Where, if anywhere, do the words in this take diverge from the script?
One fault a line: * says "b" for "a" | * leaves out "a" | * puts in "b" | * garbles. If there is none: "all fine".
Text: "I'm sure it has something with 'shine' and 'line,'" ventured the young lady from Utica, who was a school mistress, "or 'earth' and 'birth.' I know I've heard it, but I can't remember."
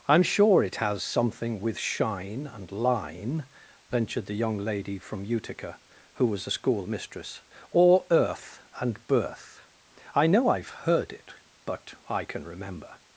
* says "can" for "can't"